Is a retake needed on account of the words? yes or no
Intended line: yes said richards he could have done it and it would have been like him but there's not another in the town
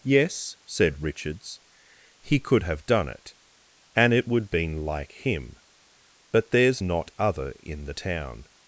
yes